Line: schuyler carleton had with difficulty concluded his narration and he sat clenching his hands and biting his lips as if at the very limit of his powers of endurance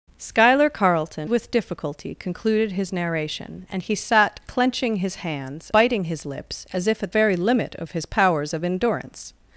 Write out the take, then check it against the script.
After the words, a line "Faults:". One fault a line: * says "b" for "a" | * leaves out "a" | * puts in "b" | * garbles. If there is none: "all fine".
schuyler carleton with difficulty concluded his narration and he sat clenching his hands biting his lips as if at very limit of his powers of endurance
Faults:
* leaves out "had"
* leaves out "and"
* leaves out "the"